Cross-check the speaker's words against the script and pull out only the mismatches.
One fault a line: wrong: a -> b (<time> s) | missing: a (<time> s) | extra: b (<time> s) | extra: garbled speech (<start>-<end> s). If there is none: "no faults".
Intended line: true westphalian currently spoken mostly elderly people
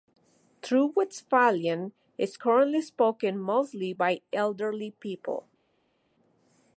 extra: is (2.2 s)
extra: by (3.9 s)